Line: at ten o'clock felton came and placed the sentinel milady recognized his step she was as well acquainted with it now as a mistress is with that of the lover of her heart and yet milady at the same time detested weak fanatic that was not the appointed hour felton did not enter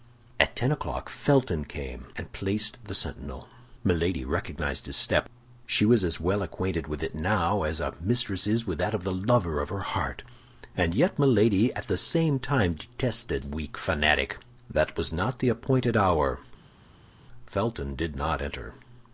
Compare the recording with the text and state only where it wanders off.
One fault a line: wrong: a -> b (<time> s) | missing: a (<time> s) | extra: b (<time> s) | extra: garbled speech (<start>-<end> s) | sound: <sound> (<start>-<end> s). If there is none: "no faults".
no faults